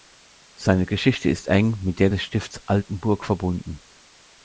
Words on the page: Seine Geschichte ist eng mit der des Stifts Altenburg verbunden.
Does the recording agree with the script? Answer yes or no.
yes